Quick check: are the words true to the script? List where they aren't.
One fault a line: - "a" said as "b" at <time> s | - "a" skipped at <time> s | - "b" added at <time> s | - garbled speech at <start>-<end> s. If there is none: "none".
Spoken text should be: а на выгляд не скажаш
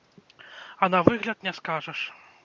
none